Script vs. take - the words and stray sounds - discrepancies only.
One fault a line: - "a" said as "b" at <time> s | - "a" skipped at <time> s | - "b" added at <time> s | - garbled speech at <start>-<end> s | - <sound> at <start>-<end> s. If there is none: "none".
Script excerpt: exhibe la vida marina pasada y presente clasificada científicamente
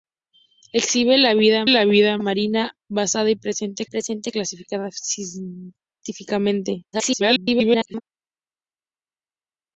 - "la vida" added at 1.7 s
- "presente" added at 3.8 s
- garbled speech at 6.9-8.0 s